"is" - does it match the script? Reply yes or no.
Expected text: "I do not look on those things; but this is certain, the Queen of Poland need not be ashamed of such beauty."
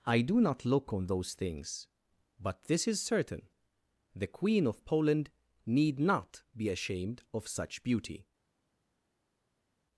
yes